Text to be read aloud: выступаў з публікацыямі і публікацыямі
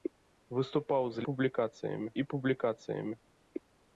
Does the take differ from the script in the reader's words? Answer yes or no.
no